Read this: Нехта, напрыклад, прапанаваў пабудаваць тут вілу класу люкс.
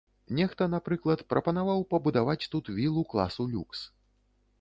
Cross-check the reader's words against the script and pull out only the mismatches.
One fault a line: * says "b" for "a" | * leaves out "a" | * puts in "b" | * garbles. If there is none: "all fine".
all fine